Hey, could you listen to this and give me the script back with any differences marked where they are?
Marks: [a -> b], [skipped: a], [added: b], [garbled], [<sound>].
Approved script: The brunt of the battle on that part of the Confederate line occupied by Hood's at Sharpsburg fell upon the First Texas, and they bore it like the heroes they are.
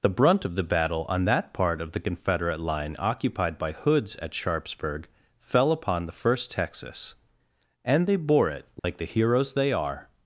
The brunt of the battle on that part of the Confederate line occupied by Hood's at Sharpsburg fell upon the First Texas, and they bore it like [dropout] the heroes they are.